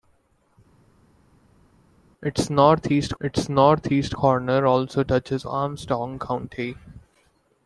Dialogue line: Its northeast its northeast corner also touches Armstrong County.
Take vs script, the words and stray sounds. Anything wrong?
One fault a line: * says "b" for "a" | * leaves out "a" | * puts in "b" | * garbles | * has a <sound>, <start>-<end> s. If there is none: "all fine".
all fine